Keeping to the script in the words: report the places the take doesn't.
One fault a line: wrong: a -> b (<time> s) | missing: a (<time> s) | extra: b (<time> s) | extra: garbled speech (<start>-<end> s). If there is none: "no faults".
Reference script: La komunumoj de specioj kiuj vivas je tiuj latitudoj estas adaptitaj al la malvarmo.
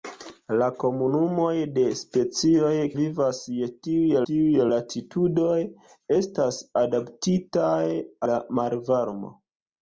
missing: kiuj (2.7 s)
extra: tiuj (4.3 s)
missing: al (7.8 s)